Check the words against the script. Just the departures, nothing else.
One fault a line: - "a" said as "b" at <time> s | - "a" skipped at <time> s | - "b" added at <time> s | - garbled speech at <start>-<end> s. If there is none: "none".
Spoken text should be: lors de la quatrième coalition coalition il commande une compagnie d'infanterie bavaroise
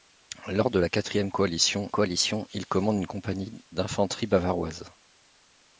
none